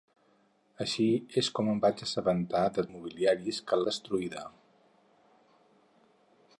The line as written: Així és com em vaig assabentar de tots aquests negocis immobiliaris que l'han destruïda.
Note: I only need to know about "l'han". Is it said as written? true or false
false